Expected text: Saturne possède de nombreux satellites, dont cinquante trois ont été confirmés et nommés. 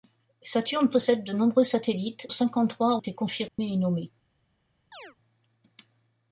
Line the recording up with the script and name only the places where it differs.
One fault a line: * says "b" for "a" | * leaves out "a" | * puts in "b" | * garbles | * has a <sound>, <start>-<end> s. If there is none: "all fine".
* leaves out "dont"
* leaves out "ont"
* has a dropout, 3.5-3.6 s
* has a chirp, 4.9-5.2 s